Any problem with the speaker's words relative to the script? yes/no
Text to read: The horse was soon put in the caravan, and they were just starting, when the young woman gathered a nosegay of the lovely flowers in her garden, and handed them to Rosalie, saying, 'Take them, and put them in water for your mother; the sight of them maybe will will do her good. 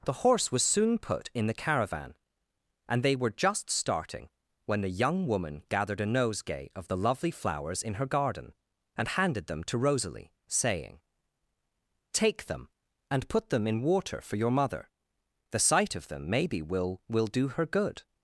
no